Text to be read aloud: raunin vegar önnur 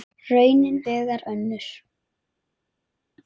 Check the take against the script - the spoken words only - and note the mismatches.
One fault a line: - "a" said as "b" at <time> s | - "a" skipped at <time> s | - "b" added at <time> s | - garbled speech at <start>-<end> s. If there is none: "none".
none